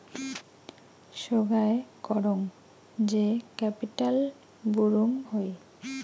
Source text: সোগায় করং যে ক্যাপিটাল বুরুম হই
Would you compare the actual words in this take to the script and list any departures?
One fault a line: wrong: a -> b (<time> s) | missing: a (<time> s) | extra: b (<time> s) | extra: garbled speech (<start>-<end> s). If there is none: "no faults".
no faults